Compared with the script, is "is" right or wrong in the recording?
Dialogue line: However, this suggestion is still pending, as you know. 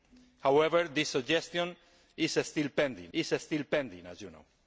right